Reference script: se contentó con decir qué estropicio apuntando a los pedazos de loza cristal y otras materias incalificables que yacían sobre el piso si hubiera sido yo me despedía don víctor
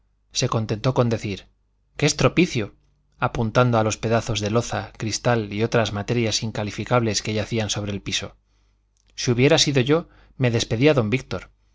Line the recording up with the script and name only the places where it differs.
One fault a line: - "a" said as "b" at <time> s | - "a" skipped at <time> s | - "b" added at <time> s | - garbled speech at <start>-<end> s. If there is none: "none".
none